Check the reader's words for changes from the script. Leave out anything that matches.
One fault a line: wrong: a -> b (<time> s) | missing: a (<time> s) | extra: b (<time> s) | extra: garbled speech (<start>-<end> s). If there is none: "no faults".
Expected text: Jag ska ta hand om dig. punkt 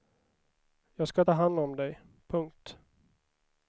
no faults